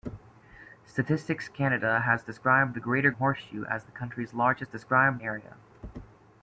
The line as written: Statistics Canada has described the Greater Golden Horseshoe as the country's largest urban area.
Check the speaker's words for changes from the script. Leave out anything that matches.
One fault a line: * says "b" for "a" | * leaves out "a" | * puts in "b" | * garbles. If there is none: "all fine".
* leaves out "Golden"
* says "described" for "urban"